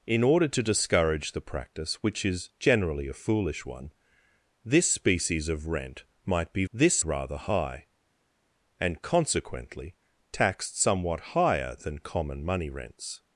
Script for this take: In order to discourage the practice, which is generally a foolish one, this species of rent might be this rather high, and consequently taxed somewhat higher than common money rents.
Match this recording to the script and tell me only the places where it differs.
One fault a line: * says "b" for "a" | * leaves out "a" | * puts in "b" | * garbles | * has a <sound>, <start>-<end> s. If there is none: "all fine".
all fine